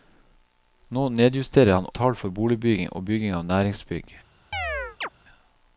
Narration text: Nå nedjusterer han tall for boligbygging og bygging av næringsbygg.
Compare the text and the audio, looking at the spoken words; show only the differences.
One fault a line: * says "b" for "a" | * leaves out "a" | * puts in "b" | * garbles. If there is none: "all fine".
all fine